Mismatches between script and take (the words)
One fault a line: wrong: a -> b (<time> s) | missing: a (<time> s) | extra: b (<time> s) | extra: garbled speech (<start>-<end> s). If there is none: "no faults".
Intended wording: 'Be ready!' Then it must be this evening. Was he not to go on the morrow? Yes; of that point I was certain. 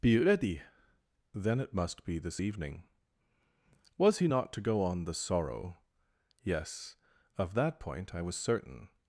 wrong: morrow -> sorrow (5.1 s)